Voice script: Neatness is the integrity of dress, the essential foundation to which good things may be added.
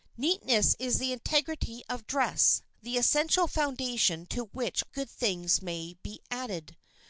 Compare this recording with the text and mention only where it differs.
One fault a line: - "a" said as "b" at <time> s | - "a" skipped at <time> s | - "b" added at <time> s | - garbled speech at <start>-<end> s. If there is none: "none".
none